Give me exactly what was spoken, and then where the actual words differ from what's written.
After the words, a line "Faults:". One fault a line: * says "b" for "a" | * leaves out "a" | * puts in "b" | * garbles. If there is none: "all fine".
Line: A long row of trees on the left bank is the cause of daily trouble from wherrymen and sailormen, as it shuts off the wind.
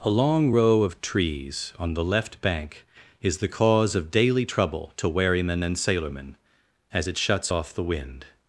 A long row of trees on the left bank is the cause of daily trouble to wherrymen and sailormen, as it shuts off the wind.
Faults:
* says "to" for "from"